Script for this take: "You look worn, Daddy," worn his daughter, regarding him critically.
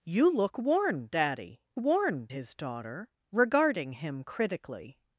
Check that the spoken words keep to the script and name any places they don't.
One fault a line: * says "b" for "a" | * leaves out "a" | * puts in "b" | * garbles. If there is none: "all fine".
all fine